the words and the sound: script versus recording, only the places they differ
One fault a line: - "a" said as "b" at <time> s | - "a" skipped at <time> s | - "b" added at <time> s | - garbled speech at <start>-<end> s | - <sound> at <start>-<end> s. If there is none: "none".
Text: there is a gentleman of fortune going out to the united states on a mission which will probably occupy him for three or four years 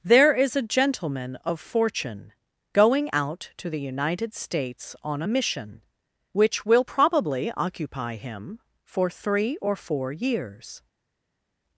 none